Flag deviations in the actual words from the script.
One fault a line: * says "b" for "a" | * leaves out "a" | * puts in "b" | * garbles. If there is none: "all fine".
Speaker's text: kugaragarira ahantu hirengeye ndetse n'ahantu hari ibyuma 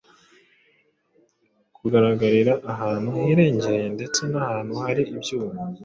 all fine